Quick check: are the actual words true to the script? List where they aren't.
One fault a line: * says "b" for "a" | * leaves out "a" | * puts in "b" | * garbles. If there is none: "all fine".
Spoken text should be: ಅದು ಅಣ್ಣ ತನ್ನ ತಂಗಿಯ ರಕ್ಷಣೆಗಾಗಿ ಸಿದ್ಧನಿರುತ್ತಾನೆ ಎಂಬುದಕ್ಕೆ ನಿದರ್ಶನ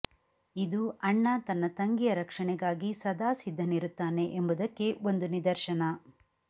* says "ಇದು" for "ಅದು"
* puts in "ಸದಾ"
* puts in "ಒಂದು"